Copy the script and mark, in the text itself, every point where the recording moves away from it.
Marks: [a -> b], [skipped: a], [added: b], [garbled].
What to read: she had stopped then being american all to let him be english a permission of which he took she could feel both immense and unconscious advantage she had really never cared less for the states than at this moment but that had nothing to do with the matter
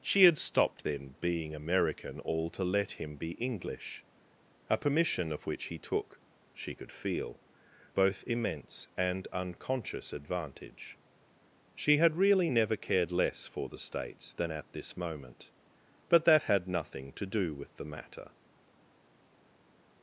she had stopped then being american all to let him be english a permission of which he took she could feel both immense and unconscious advantage she had really never cared less for the states than at this moment but that had nothing to do with the matter